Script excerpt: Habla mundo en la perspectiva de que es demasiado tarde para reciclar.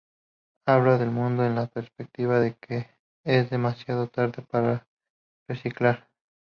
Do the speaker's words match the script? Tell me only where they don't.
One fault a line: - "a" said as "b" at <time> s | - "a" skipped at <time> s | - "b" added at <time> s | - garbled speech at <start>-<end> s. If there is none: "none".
- "del" added at 1.0 s